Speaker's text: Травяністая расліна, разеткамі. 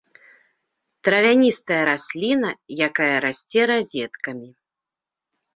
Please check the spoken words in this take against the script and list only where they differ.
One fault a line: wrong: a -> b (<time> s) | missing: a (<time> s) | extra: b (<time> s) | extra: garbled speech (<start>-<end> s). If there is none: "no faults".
extra: якая расце (2.9 s)